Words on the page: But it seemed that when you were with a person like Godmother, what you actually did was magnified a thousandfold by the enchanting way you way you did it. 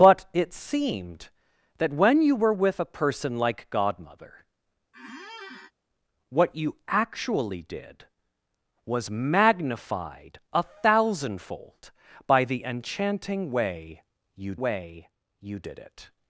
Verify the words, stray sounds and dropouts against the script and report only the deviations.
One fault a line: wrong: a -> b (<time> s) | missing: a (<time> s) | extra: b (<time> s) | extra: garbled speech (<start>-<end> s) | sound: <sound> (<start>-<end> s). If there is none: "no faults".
sound: squeak (4.9-5.7 s)